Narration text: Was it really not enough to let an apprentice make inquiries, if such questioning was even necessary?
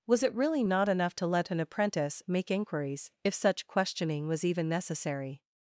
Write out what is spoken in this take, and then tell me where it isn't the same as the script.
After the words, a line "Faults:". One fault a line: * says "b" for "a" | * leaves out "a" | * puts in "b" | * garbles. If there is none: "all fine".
Was it really not enough to let an apprentice make inquiries, if such questioning was even necessary?
Faults:
all fine